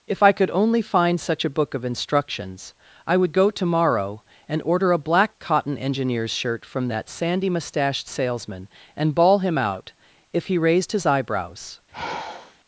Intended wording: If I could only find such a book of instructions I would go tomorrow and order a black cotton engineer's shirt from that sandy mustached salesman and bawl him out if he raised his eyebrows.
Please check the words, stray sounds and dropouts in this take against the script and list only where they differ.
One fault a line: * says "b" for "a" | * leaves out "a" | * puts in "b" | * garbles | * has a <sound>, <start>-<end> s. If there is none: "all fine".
* has a sigh, 11.9-12.6 s